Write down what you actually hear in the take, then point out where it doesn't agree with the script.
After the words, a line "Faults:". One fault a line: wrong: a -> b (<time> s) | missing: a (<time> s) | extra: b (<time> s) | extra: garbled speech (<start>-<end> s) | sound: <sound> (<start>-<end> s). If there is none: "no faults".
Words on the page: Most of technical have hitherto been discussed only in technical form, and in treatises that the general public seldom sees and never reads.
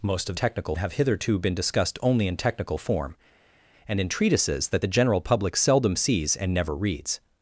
Most of technical have hitherto been discussed only in technical form, and in treatises that the general public seldom sees and never reads.
Faults:
no faults